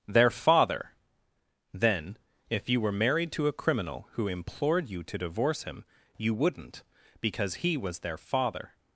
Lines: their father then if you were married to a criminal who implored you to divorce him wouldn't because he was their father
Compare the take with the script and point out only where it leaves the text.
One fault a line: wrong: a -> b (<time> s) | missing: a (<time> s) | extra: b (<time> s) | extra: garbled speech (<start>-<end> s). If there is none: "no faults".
extra: you (6.2 s)